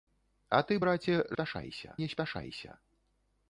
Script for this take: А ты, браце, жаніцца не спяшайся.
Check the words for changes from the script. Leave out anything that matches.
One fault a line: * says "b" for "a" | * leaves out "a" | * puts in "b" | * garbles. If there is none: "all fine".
* says "спяшайся" for "жаніцца"